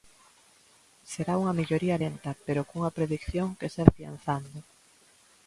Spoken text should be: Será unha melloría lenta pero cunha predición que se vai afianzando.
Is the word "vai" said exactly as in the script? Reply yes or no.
no